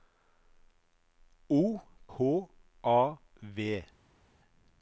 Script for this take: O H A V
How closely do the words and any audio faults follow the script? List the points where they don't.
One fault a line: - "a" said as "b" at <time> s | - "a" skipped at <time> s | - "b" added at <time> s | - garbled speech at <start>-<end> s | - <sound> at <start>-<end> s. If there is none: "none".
none